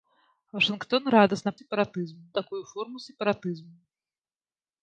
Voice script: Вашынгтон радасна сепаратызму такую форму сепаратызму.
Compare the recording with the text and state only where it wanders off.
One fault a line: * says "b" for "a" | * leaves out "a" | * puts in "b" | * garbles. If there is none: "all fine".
all fine